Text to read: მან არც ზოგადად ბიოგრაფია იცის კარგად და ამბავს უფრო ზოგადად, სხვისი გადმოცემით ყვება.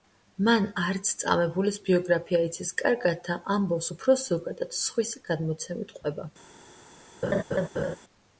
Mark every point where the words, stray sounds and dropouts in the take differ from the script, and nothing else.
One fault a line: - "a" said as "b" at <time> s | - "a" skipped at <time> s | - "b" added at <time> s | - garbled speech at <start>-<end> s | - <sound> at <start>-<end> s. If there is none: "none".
- "ზოგადად" said as "წამებულის" at 1.2 s
- laugh at 7.2-8.0 s